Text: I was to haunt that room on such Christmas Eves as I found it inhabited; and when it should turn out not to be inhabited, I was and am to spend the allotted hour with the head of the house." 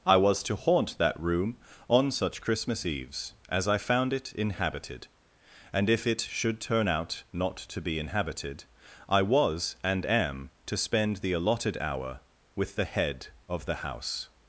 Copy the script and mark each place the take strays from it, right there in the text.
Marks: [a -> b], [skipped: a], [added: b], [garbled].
I was to haunt that room on such Christmas Eves as I found it inhabited; and [when -> if] it should turn out not to be inhabited, I was and am to spend the allotted hour with the head of the house."